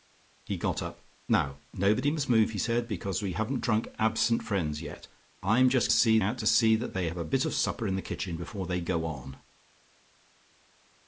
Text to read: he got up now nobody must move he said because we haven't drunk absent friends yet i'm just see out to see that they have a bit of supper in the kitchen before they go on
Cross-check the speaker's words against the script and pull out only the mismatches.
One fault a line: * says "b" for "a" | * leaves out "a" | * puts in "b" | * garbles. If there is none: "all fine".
all fine